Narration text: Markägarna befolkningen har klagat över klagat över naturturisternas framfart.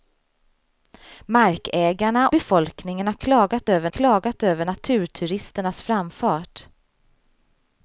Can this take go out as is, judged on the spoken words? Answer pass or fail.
pass